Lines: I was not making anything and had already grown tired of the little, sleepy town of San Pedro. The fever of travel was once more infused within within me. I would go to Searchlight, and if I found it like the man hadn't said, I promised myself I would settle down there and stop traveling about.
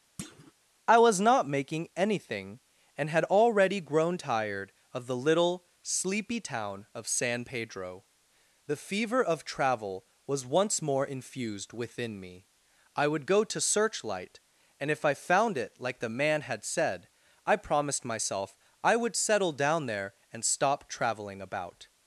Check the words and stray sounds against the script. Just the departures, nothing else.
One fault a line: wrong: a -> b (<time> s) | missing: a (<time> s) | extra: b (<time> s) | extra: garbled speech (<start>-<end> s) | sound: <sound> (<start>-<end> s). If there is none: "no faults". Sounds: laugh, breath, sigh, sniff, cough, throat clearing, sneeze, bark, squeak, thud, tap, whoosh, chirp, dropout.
sound: thud (0.2-0.5 s)
missing: within (12.2 s)
wrong: hadn't -> had (16.4 s)